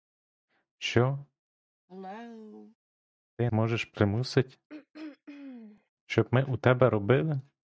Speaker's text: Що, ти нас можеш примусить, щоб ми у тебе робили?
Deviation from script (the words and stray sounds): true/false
true